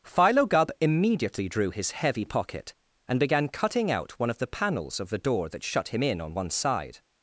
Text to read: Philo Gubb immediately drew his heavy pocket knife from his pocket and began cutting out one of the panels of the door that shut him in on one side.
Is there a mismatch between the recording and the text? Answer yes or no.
yes